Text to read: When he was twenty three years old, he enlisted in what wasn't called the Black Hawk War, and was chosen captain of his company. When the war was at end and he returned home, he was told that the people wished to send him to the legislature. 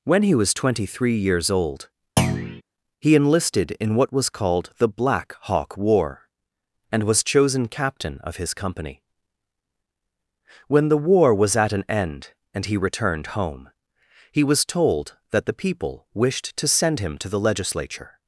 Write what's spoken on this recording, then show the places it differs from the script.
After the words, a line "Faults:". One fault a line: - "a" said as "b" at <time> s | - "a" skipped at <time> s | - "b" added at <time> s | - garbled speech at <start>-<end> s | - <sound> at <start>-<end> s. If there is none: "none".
When he was twenty three years old, he enlisted in what was called the Black Hawk War, and was chosen captain of his company. When the war was at an end and he returned home, he was told that the people wished to send him to the legislature.
Faults:
- thud at 2.2-2.6 s
- "wasn't" said as "was" at 4.1 s
- "an" added at 11.7 s